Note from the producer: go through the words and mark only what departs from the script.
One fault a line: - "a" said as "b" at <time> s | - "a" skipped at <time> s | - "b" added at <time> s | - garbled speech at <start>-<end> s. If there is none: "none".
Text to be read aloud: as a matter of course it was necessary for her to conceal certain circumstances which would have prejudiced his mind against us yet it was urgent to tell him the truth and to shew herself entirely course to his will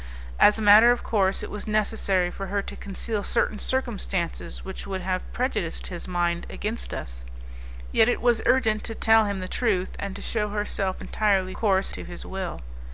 none